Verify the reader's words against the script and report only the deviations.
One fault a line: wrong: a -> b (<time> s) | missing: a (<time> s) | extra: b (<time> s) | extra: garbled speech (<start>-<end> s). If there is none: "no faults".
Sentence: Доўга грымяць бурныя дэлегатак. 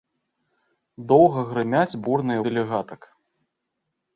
no faults